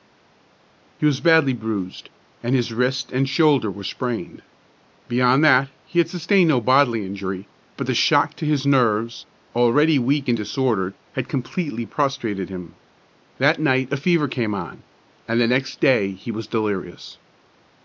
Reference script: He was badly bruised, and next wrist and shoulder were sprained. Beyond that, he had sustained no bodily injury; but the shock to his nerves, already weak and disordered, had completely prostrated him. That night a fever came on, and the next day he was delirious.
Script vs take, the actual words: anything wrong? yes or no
yes